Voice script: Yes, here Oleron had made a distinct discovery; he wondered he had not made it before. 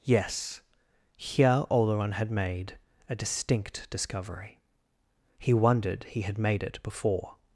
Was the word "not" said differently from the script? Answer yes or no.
yes